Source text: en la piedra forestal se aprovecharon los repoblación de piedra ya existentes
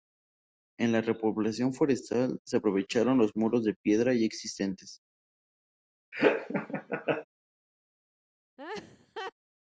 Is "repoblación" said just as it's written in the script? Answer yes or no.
no